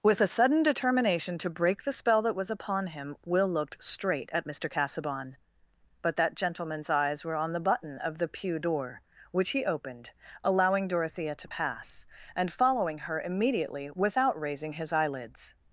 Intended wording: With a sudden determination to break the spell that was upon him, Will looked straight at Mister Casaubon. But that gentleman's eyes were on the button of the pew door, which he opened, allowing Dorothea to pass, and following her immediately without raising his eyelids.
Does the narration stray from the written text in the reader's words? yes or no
no